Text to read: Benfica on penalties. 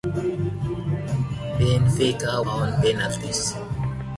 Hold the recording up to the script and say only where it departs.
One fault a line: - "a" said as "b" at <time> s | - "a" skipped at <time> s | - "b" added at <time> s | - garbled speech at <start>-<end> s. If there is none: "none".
none